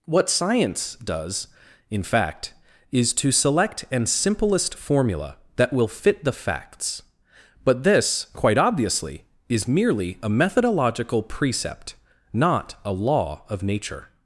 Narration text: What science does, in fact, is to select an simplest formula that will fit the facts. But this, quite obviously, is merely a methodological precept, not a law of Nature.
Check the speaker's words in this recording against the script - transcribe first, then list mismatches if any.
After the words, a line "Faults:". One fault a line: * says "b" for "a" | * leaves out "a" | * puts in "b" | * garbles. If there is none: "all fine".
What science does, in fact, is to select an simplest formula that will fit the facts. But this, quite obviously, is merely a methodological precept, not a law of Nature.
Faults:
all fine